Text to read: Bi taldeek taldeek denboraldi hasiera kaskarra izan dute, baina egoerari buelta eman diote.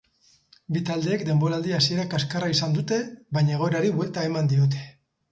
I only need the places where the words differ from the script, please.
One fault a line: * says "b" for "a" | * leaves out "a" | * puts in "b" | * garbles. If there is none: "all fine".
* leaves out "taldeek"